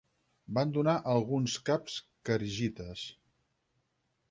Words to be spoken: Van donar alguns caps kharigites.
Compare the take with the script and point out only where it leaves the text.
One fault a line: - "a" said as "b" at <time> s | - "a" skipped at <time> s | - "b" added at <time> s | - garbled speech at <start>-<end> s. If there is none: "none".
none